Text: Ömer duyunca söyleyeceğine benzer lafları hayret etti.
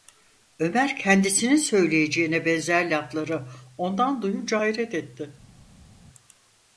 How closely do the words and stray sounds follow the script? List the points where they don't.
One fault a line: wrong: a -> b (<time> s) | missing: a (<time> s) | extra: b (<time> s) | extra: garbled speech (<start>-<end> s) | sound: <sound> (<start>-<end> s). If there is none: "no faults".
wrong: duyunca -> kendisinin (1.0 s)
extra: ondan duyunca (3.8 s)